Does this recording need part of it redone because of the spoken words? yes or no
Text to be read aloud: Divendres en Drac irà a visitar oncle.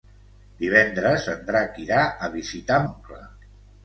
no